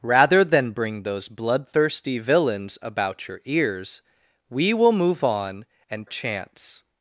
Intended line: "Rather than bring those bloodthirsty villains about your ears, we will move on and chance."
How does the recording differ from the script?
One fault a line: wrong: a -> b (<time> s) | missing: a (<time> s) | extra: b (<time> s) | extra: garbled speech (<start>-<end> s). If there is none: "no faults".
no faults